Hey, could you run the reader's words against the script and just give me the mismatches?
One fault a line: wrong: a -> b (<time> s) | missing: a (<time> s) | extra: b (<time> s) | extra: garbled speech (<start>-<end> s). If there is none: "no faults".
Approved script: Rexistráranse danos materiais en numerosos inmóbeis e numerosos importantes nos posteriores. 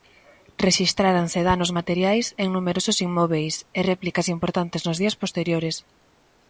wrong: numerosos -> réplicas (3.9 s)
extra: días (5.0 s)